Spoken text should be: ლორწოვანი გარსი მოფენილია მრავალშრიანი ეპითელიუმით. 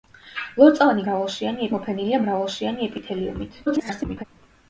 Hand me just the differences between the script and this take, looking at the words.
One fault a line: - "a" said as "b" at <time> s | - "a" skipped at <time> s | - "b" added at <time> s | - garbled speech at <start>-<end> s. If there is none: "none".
- "გარსი" said as "მრავალშრიანი" at 1.1 s
- garbled speech at 3.7-4.2 s